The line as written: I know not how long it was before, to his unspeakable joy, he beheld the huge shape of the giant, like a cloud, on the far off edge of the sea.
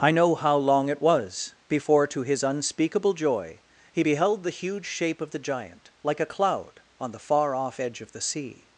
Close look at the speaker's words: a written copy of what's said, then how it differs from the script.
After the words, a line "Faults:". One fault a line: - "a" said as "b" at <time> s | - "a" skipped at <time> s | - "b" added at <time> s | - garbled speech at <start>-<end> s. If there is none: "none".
I know how long it was before, to his unspeakable joy, he beheld the huge shape of the giant, like a cloud, on the far off edge of the sea.
Faults:
- "not" skipped at 0.3 s